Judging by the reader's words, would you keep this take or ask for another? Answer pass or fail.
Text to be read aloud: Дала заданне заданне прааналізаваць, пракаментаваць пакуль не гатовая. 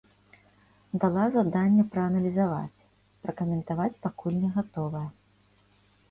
fail